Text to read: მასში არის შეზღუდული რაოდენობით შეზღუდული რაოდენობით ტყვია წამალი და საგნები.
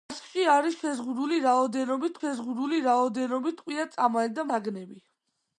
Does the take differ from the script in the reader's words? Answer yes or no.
no